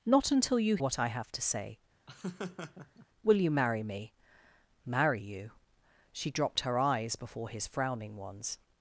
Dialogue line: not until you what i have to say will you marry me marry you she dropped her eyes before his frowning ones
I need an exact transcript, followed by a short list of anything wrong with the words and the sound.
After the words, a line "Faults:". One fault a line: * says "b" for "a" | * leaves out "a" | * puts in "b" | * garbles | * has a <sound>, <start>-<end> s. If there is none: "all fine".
not until you what i have to say will you marry me marry you she dropped her eyes before his frowning ones
Faults:
* has a laugh, 2.1-3.1 s